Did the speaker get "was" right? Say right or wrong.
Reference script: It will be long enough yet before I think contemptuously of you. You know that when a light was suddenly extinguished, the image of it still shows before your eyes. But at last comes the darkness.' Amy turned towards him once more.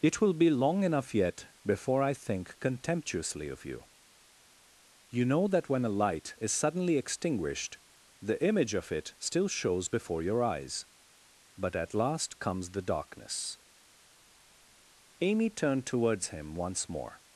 wrong